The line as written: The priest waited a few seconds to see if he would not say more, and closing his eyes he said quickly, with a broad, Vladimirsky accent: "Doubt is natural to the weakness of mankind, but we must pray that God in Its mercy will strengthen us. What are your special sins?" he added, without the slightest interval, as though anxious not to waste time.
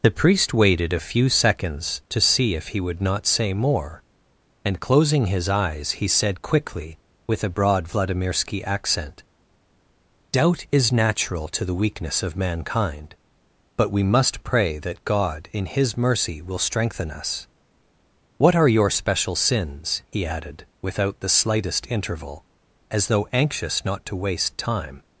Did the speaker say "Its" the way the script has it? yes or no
no